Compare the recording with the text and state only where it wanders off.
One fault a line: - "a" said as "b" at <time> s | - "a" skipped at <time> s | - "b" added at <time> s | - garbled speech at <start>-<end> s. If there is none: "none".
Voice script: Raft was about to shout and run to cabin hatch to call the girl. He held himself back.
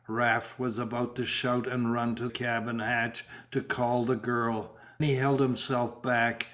none